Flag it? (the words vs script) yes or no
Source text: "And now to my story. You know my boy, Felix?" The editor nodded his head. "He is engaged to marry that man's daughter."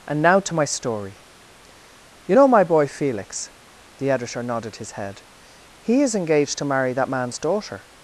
no